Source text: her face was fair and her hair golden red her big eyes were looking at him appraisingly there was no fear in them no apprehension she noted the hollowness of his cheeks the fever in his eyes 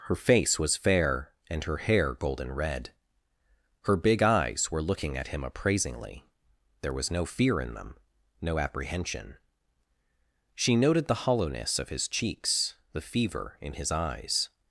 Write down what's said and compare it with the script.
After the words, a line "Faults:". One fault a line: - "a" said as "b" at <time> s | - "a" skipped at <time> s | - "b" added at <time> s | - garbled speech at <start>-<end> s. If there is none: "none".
her face was fair and her hair golden red her big eyes were looking at him appraisingly there was no fear in them no apprehension she noted the hollowness of his cheeks the fever in his eyes
Faults:
none